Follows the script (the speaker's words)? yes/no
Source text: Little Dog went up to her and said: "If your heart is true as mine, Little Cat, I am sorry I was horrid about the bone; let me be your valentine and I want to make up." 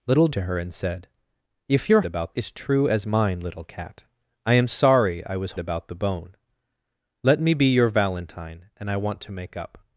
no